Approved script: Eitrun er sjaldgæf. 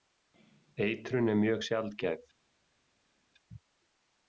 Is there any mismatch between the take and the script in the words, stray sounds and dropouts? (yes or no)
yes